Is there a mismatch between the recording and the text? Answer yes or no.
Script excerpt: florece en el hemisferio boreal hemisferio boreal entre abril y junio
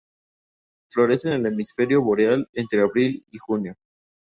yes